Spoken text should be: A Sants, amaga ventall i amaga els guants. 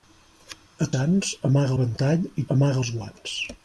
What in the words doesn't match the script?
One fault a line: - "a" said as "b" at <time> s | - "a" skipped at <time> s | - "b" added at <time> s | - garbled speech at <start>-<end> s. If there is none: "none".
none